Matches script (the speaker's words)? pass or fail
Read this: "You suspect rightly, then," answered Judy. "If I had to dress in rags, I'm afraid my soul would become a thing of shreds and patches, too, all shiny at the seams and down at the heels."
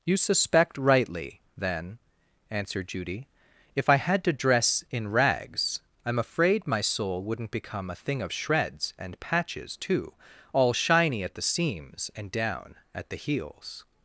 fail